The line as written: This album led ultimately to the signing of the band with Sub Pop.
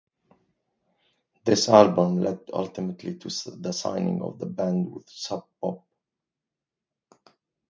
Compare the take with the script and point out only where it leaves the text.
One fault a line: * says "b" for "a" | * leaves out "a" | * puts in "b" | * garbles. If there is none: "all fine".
all fine